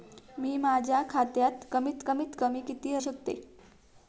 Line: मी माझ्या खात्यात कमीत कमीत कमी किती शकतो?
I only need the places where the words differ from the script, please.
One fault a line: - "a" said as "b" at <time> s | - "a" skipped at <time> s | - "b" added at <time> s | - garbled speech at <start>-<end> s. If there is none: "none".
none